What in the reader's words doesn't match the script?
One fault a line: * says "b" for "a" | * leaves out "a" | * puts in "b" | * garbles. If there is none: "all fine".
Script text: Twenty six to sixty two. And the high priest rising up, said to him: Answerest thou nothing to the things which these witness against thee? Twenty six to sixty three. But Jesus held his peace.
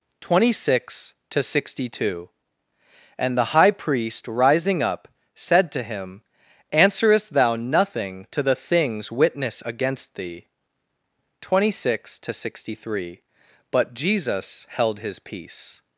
* leaves out "which these"